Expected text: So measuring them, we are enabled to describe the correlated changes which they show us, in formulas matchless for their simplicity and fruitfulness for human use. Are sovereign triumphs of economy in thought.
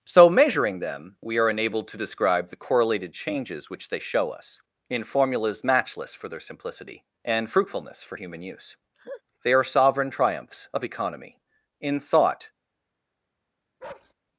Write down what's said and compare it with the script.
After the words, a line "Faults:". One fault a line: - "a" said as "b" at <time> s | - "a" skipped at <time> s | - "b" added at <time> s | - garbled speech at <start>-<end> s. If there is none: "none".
So measuring them, we are enabled to describe the correlated changes which they show us, in formulas matchless for their simplicity and fruitfulness for human use. They are sovereign triumphs of economy in thought.
Faults:
- "They" added at 9.4 s